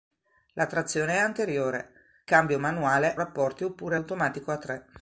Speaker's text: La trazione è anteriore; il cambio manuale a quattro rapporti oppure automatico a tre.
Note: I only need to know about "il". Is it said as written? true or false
false